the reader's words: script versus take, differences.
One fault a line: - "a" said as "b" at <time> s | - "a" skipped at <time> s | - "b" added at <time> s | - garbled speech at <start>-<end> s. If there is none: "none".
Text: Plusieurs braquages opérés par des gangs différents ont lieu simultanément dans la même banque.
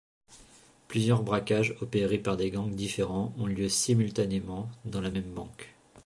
none